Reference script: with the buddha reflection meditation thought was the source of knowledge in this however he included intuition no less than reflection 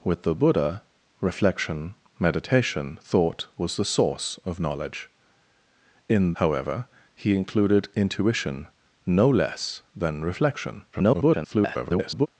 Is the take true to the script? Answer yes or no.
no